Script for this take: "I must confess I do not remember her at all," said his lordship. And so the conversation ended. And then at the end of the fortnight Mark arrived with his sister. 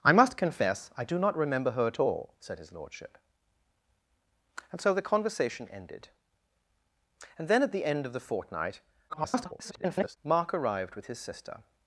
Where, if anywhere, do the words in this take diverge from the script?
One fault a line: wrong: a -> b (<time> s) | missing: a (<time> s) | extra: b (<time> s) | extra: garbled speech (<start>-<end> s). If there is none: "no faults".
extra: garbled speech (9.1-10.2 s)